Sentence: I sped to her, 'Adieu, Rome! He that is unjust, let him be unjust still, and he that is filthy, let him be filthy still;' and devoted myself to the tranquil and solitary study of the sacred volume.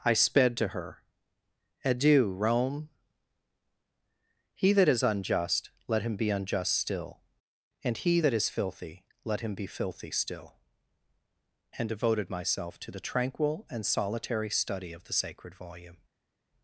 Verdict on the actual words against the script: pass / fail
pass